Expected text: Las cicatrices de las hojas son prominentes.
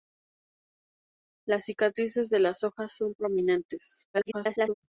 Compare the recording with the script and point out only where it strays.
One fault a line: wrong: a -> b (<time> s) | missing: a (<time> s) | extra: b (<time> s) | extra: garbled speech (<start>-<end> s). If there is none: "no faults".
extra: garbled speech (4.1-4.7 s)